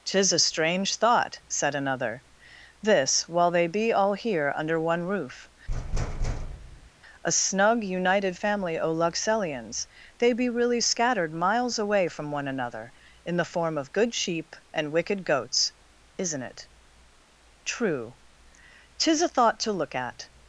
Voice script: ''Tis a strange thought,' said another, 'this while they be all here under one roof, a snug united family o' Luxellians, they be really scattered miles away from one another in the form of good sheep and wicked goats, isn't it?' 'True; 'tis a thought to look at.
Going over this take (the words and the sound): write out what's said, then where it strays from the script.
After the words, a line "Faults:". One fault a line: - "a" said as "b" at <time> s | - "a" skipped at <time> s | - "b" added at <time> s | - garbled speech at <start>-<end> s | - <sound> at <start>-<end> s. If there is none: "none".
''Tis a strange thought,' said another, 'this while they be all here under one roof, a snug united family o' Luxellians, they be really scattered miles away from one another in the form of good sheep and wicked goats, isn't it?' 'True; 'tis a thought to look at.
Faults:
- thud at 5.7-6.9 s